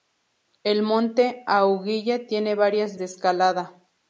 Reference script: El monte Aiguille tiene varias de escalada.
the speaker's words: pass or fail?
pass